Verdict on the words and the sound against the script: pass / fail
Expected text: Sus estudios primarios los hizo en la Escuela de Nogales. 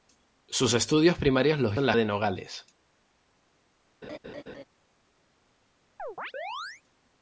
fail